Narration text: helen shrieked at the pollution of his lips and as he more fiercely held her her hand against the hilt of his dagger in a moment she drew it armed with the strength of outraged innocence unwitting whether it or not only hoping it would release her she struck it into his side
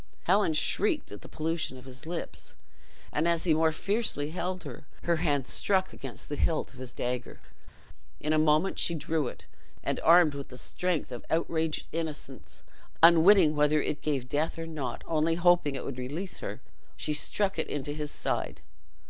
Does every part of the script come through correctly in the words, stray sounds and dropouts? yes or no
no